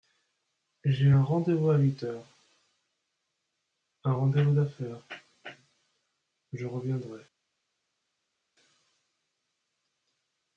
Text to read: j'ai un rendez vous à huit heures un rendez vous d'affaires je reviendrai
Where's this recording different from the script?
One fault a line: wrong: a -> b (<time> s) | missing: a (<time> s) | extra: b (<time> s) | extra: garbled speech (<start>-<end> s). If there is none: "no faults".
no faults